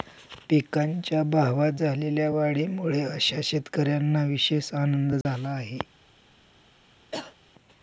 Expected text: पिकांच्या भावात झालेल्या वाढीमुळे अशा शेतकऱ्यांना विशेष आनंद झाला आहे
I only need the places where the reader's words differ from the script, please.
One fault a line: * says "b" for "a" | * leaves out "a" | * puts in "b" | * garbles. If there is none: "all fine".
all fine